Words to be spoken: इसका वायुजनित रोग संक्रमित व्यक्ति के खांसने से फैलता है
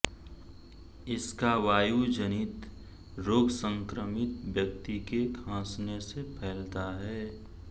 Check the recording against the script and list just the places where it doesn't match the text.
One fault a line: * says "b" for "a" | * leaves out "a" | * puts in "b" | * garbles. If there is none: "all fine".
all fine